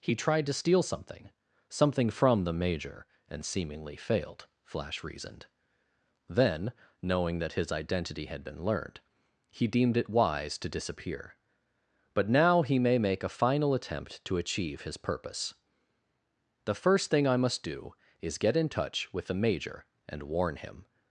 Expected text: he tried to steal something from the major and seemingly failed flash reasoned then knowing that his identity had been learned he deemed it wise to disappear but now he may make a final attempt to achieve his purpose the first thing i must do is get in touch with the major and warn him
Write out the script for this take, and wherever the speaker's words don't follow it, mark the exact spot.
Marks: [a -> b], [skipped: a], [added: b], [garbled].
he tried to steal something [added: something] from the major and seemingly failed flash reasoned then knowing that his identity had been learned he deemed it wise to disappear but now he may make a final attempt to achieve his purpose the first thing i must do is get in touch with the major and warn him